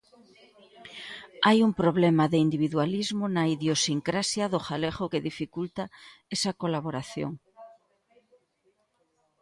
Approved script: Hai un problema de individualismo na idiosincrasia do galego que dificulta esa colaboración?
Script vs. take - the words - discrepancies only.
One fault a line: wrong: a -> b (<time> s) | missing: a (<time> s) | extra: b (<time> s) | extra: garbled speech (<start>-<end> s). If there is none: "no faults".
no faults